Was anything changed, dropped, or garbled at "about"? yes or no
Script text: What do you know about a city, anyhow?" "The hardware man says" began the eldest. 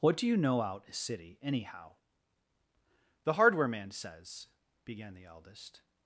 yes